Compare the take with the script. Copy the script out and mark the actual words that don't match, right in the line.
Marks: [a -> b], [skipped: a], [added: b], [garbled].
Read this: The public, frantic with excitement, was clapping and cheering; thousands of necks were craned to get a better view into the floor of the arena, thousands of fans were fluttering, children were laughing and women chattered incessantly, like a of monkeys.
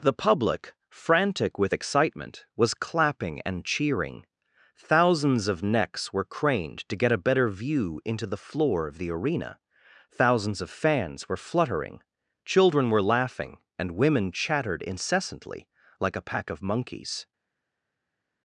The public, frantic with excitement, was clapping and cheering; thousands of necks were craned to get a better view into the floor of the arena, thousands of fans were fluttering, children were laughing and women chattered incessantly, like a [added: pack] of monkeys.